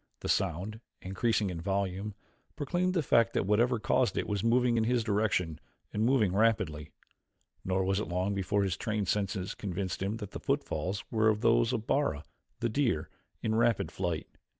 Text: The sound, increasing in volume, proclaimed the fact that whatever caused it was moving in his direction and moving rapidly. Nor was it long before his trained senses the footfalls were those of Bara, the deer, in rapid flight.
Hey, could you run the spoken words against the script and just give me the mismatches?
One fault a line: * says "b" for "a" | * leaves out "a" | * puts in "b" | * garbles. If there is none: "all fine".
* puts in "convinced him that"